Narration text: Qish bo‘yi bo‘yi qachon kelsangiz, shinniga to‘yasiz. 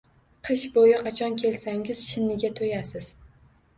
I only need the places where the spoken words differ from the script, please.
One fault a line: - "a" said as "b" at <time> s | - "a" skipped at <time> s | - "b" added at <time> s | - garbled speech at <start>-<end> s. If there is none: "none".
- "bo‘yi" skipped at 0.9 s